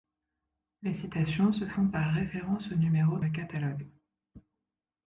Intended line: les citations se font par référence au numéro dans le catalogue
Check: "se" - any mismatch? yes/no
no